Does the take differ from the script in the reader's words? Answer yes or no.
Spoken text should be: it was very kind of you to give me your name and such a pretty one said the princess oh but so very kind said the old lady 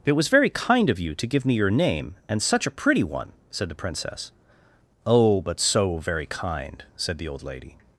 no